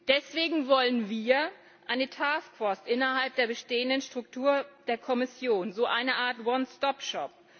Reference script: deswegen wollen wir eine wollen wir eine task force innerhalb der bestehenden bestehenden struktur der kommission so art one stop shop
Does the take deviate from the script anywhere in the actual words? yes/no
yes